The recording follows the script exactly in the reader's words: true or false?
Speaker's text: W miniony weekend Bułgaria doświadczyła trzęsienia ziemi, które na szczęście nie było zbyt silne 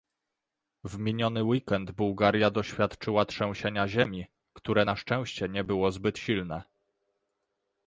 true